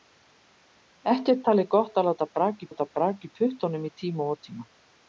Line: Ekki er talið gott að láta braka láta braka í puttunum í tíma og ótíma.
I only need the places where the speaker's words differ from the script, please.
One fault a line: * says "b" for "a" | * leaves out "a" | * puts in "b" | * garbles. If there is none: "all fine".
all fine